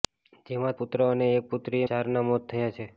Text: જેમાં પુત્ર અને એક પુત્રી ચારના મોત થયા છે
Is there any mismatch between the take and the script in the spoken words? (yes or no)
no